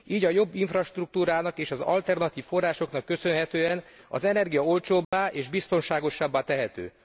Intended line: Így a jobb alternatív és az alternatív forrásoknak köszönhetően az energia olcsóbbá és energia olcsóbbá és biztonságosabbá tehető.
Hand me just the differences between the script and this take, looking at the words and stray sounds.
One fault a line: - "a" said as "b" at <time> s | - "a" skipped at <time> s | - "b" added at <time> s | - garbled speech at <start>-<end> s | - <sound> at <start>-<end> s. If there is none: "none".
- "alternatív" said as "infrastruktúrának" at 0.6 s
- dropout at 5.0-5.1 s
- "energia olcsóbbá és" skipped at 5.5 s